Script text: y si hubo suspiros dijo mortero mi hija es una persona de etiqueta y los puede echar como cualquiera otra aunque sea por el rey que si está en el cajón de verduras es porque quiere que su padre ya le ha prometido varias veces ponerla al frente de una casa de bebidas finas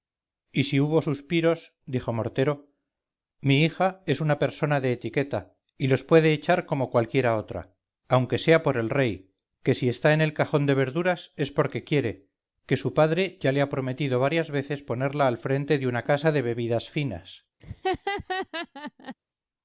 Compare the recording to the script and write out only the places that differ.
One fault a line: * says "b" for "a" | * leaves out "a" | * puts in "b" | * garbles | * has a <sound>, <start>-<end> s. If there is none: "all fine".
* has a laugh, 17.6-19.2 s